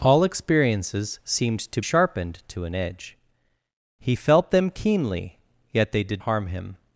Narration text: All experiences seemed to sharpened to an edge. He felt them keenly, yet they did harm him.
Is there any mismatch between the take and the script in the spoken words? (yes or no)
no